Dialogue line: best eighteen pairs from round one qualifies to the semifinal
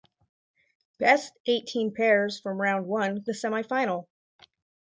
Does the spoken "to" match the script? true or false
false